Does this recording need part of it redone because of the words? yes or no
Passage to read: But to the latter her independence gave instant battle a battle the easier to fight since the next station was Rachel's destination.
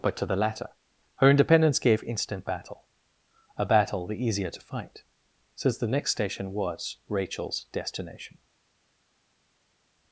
no